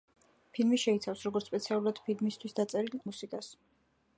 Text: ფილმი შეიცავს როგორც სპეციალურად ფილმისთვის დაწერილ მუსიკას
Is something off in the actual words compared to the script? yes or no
no